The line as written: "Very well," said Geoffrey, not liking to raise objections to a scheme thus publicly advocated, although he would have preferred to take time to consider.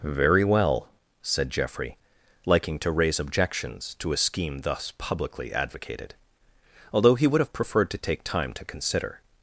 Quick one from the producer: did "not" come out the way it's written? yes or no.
no